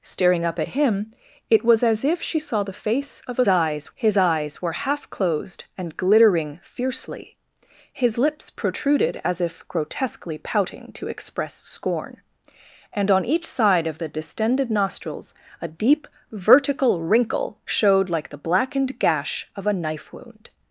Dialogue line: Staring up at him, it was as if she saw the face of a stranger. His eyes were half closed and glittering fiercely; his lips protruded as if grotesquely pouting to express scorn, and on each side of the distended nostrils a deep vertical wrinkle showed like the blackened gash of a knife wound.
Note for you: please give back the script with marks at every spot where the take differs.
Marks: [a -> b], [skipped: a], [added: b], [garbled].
Staring up at him, it was as if she saw the face of a [stranger. -> eyes] His eyes were half closed and glittering fiercely; his lips protruded as if grotesquely pouting to express scorn, and on each side of the distended nostrils a deep vertical wrinkle showed like the blackened gash of a knife wound.